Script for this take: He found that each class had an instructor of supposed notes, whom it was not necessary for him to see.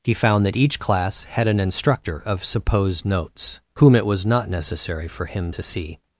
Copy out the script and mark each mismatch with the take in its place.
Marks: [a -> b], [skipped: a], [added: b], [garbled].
He found that each class had an instructor of supposed notes, whom it was not necessary for him to see.